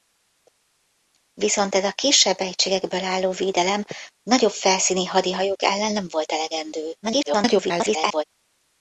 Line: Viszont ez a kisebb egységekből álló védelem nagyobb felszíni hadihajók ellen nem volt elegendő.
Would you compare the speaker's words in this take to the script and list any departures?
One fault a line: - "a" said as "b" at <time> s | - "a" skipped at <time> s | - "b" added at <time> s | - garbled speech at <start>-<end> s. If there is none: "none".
- garbled speech at 7.0-8.2 s